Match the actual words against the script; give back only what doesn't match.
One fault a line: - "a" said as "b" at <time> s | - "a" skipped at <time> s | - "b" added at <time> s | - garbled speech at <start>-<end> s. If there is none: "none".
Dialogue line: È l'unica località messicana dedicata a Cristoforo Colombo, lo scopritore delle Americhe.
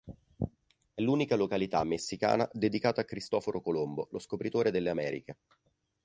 none